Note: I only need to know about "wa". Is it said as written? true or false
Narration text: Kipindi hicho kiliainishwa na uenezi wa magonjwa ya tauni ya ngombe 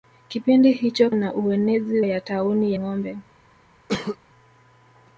false